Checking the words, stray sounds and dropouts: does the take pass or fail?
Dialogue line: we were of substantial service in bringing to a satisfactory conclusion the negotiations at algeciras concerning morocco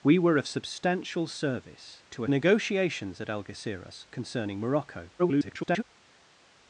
fail